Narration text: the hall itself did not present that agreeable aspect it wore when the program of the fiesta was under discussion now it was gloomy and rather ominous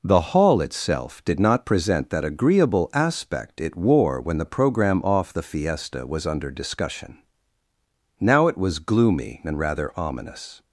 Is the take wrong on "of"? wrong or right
wrong